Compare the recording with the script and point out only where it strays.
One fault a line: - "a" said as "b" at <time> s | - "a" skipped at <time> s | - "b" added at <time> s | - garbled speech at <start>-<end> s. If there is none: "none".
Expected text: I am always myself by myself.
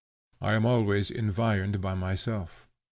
- "myself" said as "environed" at 1.1 s